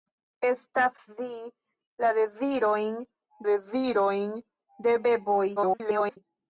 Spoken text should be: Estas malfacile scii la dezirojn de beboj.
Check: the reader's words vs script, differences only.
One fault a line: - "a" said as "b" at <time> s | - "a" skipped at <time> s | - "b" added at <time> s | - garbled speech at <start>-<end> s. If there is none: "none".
- "malfacile" skipped at 0.9 s
- "dezirojn" added at 3.5 s
- garbled speech at 5.6-6.2 s